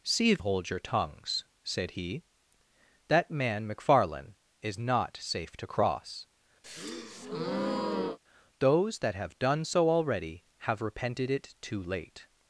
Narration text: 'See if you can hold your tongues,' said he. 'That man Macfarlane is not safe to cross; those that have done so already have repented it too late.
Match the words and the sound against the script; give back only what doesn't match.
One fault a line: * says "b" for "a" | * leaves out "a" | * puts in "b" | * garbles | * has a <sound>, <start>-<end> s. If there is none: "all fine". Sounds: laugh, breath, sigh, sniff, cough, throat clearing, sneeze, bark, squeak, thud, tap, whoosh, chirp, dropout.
* leaves out "you can"
* has a breath, 6.6-8.2 s